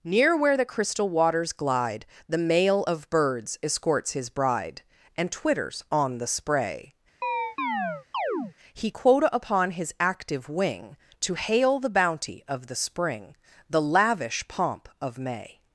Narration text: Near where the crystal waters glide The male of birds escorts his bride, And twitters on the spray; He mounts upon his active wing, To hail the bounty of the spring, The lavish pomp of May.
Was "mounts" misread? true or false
true